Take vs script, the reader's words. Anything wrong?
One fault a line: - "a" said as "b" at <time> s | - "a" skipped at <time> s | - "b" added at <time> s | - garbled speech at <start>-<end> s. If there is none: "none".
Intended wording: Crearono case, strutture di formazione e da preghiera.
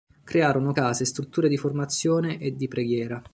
- "da" said as "di" at 2.5 s